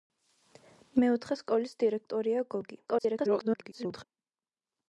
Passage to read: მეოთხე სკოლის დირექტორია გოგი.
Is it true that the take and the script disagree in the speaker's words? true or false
true